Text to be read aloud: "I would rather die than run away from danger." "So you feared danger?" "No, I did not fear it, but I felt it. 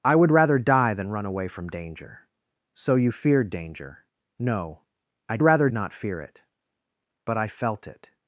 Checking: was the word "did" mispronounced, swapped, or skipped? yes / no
yes